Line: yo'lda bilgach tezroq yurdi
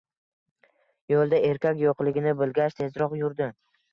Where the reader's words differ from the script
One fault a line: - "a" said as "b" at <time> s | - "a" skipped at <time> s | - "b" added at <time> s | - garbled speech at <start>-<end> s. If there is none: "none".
- "erkak yo'qligini" added at 1.5 s